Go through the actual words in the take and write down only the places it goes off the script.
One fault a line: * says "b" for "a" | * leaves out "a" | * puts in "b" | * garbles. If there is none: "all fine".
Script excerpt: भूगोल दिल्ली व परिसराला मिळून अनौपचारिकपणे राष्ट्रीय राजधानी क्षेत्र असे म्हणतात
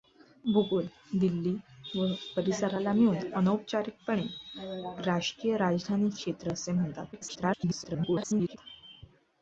* garbles